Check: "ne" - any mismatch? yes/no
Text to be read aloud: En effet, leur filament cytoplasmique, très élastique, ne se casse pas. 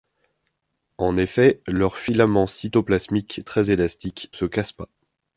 yes